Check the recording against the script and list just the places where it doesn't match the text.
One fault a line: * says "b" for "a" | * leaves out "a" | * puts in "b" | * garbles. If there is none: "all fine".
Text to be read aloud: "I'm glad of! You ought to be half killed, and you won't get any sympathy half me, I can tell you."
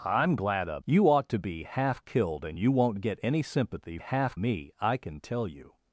all fine